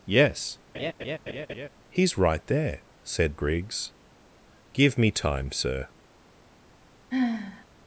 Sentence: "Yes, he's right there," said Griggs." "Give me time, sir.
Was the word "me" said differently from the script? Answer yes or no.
no